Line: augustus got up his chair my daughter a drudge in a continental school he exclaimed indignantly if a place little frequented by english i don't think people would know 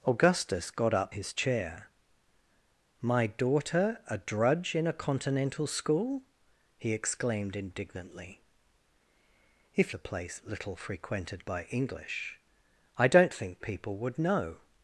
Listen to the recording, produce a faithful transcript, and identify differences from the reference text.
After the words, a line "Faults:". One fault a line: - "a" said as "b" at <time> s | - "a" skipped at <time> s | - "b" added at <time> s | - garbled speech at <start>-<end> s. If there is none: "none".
augustus got up his chair my daughter a drudge in a continental school he exclaimed indignantly if a place little frequented by english i don't think people would know
Faults:
none